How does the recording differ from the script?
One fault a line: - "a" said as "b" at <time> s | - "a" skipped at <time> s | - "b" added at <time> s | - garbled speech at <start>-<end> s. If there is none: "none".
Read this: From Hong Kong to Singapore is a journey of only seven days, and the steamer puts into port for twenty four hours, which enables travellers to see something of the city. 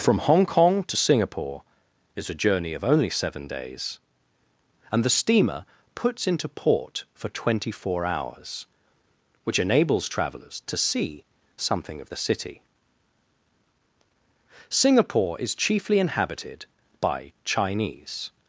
- "Singapore is chiefly inhabited by Chinese" added at 14.7 s